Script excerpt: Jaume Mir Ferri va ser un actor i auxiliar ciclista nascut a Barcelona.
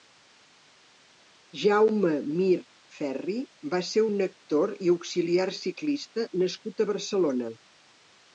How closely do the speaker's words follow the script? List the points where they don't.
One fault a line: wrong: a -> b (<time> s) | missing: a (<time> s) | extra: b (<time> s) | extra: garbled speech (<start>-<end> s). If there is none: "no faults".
no faults